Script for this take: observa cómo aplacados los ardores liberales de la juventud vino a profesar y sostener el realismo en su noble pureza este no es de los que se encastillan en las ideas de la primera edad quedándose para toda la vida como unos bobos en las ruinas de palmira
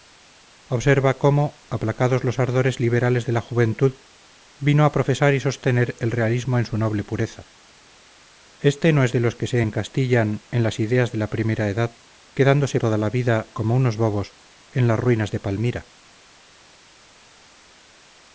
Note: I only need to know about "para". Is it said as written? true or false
false